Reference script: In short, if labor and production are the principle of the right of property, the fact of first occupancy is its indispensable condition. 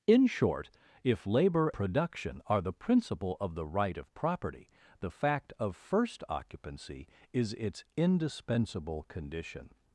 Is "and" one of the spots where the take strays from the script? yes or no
yes